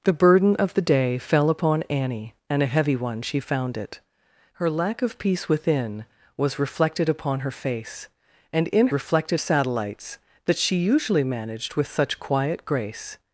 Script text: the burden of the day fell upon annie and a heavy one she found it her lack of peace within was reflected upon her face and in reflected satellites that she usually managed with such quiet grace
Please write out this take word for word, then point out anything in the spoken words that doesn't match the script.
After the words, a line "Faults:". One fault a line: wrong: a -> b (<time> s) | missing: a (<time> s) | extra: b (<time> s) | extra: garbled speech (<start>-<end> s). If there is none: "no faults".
the burden of the day fell upon annie and a heavy one she found it her lack of peace within was reflected upon her face and in reflected satellites that she usually managed with such quiet grace
Faults:
no faults